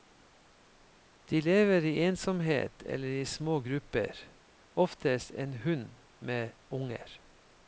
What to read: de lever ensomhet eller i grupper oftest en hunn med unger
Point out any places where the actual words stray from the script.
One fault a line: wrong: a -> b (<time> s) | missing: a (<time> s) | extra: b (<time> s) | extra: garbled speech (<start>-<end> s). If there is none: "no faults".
extra: i (1.8 s)
extra: små (3.2 s)